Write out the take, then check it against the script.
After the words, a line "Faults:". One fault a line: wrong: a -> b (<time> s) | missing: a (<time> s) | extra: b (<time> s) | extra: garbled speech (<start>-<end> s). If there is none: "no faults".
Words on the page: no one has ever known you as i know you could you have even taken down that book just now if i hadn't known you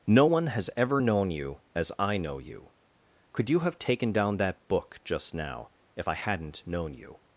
no one has ever known you as i know you could you have taken down that book just now if i hadn't known you
Faults:
missing: even (3.8 s)